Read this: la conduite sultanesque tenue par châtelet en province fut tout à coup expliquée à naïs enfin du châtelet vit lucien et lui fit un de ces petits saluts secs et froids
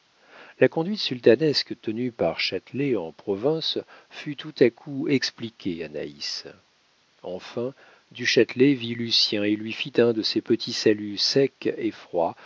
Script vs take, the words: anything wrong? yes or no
no